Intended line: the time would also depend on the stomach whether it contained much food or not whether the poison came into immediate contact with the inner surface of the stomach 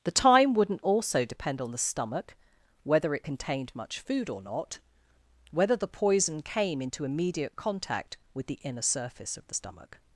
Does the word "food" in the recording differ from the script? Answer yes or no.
no